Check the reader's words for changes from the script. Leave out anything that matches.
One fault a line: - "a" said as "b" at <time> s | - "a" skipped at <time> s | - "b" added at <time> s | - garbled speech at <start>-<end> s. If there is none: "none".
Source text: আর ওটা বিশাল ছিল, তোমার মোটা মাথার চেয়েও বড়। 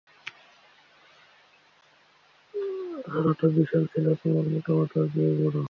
none